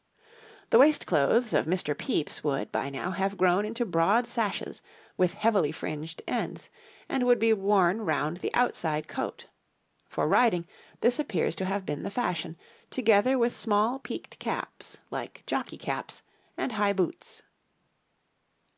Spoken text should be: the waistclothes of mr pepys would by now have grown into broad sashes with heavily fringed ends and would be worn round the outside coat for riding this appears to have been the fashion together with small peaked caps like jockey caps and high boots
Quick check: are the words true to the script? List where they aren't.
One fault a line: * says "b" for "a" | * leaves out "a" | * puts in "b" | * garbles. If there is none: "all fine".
all fine